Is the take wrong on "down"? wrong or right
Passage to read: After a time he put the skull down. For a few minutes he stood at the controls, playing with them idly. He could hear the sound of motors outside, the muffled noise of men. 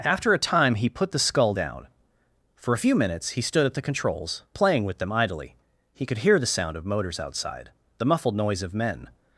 right